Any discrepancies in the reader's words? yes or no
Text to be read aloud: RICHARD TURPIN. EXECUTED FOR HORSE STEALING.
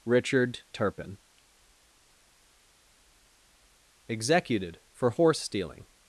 no